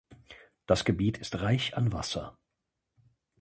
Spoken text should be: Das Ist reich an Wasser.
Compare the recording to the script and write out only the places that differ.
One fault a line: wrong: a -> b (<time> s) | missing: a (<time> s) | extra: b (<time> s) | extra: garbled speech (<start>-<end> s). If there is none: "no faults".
extra: Gebiet (0.8 s)